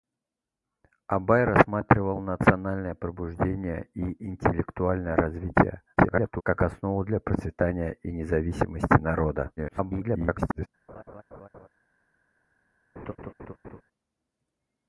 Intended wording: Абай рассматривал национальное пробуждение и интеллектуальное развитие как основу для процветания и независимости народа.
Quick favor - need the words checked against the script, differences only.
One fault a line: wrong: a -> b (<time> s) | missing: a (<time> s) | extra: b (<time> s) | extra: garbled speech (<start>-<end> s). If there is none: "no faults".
extra: garbled speech (6.0-6.4 s)
extra: garbled speech (9.6-10.7 s)